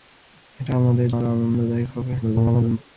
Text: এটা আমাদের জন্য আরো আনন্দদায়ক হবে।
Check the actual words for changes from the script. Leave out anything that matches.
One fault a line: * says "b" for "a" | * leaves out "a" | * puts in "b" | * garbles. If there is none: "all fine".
* leaves out "জন্য"
* garbles